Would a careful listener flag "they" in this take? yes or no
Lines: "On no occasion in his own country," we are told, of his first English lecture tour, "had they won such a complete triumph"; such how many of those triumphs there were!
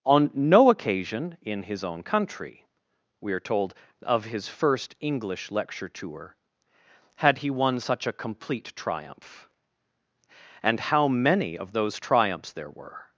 yes